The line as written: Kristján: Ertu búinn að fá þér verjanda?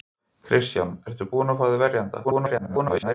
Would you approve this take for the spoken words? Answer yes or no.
no